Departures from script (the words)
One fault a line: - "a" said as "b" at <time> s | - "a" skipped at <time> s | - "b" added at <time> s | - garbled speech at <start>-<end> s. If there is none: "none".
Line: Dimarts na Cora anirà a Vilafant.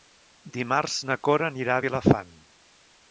none